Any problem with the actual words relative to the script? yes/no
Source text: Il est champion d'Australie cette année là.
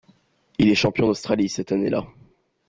no